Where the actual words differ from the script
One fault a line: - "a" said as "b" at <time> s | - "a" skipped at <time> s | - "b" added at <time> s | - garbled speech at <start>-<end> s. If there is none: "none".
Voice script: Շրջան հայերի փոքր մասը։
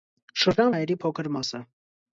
none